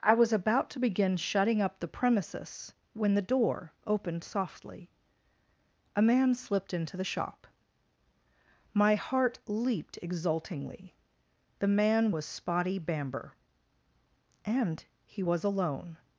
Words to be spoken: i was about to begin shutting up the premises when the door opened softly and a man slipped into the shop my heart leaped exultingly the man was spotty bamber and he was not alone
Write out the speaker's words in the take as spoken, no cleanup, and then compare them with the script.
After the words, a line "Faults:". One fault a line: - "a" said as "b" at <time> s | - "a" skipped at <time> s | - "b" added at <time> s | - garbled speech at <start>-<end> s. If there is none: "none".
i was about to begin shutting up the premises when the door opened softly a man slipped into the shop my heart leaped exultingly the man was spotty bamber and he was alone
Faults:
- "and" skipped at 4.9 s
- "not" skipped at 15.4 s